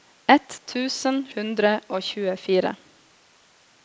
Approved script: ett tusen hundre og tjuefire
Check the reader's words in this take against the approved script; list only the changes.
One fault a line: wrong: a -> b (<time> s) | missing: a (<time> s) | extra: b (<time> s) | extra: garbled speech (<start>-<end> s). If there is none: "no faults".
no faults